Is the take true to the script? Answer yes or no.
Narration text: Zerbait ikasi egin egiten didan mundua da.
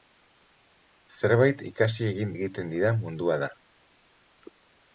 yes